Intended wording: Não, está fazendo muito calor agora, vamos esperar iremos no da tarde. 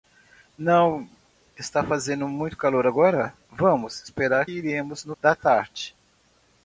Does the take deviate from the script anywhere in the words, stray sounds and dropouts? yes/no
no